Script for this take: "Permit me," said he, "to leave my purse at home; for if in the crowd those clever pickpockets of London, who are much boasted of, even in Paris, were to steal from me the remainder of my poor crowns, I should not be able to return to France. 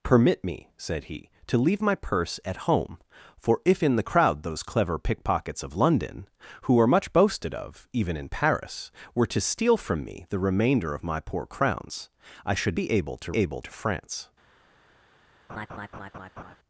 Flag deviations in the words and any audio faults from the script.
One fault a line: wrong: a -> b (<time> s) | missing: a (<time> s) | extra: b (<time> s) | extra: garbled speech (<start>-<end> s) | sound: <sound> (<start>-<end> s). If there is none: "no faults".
missing: not (12.8 s)
wrong: return -> able (13.3 s)
sound: laugh (15.5-16.6 s)